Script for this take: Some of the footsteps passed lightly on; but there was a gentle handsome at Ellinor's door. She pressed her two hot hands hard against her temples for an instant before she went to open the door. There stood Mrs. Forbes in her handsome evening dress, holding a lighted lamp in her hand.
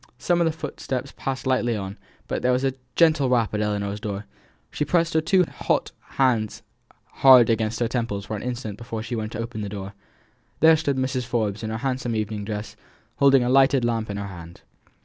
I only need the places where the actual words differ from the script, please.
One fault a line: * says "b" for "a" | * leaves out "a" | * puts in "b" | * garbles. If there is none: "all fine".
* says "rap" for "handsome"